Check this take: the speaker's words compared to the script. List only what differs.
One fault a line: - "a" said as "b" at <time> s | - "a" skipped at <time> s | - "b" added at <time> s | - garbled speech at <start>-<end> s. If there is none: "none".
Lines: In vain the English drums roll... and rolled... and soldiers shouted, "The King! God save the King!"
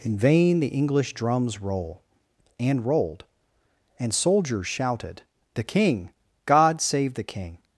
none